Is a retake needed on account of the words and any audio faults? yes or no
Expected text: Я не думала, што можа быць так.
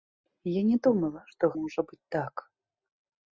no